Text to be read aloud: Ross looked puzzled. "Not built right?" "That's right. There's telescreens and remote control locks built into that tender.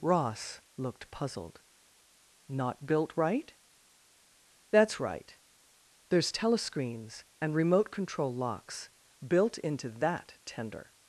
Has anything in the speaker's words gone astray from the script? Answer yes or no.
no